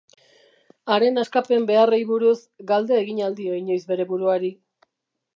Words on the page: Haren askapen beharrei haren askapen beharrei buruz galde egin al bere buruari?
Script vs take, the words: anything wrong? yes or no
yes